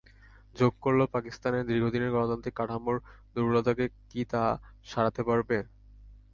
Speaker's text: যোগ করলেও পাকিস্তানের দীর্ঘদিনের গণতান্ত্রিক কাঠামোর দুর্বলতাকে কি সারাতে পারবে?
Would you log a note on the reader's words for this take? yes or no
yes